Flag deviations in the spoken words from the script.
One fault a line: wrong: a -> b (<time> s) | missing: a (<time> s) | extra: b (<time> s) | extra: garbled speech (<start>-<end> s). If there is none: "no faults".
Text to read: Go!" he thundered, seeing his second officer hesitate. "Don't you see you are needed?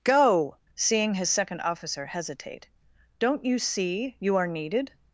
missing: he thundered (0.6 s)